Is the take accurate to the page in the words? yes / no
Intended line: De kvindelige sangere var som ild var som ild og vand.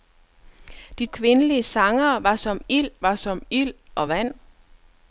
yes